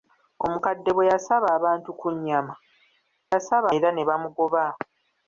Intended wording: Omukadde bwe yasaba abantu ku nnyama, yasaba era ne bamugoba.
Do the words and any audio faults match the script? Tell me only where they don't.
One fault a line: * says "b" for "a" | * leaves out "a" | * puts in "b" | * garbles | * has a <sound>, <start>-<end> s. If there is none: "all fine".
all fine